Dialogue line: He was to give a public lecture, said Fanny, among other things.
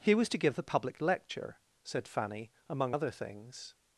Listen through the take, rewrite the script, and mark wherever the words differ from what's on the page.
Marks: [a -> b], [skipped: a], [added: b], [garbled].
He was to give [a -> the] public lecture, said Fanny, among other things.